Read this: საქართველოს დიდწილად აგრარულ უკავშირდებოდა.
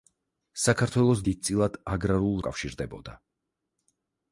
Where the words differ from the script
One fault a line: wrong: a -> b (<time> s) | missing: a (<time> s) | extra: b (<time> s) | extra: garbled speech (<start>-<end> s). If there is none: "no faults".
no faults